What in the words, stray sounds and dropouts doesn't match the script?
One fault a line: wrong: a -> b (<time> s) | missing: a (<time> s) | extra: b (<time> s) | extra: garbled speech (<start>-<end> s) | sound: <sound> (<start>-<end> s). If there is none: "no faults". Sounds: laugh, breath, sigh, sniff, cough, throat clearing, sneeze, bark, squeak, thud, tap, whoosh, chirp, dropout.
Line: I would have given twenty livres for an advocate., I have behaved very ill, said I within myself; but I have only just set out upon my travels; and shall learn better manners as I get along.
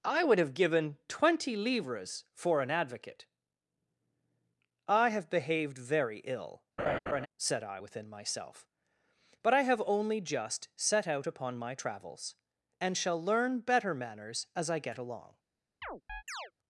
sound: laugh (6.8-7.3 s)
sound: chirp (15.8-16.5 s)